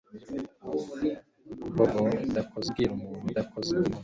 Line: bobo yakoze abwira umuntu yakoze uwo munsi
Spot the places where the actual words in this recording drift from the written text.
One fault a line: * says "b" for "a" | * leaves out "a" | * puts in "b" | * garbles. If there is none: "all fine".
all fine